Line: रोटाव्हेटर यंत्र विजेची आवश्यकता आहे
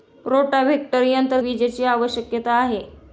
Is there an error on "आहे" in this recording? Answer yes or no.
no